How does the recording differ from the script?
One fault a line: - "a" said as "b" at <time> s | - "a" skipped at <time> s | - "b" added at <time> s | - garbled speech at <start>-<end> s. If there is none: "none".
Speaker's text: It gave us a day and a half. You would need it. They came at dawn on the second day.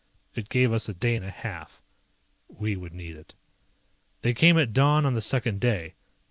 - "You" said as "We" at 2.5 s